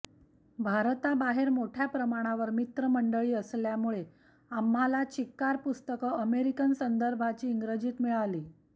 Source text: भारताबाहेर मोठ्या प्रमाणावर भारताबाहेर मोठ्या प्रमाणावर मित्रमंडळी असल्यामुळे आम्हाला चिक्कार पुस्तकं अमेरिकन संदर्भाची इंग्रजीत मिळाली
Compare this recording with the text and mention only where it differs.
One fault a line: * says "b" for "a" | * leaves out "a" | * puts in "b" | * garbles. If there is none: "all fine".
* leaves out "भारताबाहेर मोठ्या प्रमाणावर"